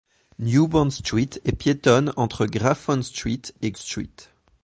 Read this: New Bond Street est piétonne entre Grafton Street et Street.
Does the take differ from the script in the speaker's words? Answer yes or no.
no